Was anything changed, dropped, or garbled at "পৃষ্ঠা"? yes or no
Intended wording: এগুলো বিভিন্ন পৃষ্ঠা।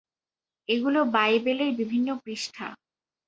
no